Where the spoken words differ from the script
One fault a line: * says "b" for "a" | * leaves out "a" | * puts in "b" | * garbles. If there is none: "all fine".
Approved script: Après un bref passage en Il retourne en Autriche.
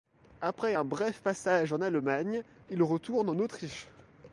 * puts in "Allemagne"